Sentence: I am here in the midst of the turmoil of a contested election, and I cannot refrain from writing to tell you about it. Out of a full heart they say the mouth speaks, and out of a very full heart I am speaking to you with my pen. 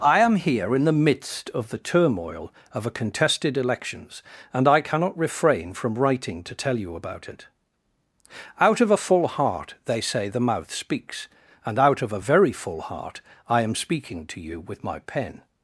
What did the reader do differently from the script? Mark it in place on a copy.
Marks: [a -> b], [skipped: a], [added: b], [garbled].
I am here in the midst of the turmoil of a contested [election, -> elections] and I cannot refrain from writing to tell you about it. Out of a full heart they say the mouth speaks, and out of a very full heart I am speaking to you with my pen.